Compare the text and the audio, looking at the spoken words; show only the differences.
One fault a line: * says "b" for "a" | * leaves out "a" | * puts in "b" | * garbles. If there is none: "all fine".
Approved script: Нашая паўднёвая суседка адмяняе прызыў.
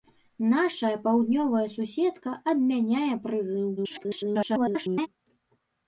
* garbles